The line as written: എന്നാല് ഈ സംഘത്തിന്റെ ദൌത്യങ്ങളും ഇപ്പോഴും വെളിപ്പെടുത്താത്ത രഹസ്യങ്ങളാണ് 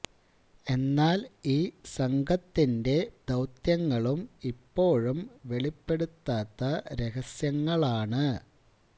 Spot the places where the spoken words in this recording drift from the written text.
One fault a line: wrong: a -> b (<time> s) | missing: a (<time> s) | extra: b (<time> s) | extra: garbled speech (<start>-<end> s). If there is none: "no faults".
no faults